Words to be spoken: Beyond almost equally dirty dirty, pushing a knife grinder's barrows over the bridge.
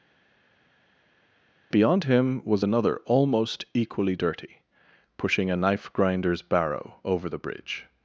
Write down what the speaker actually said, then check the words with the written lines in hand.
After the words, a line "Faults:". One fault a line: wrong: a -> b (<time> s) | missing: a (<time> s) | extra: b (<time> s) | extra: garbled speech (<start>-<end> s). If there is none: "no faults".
Beyond him was another almost equally dirty, pushing a knife grinder's barrow over the bridge.
Faults:
extra: him was another (2.0 s)
missing: dirty (4.6 s)
wrong: barrows -> barrow (6.4 s)